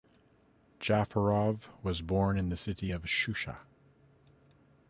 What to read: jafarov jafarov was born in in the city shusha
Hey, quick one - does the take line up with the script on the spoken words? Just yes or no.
no